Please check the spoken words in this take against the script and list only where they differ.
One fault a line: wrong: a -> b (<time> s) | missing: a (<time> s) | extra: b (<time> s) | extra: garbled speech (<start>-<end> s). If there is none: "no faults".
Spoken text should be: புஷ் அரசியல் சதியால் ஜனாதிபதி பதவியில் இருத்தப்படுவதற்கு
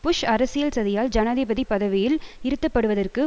no faults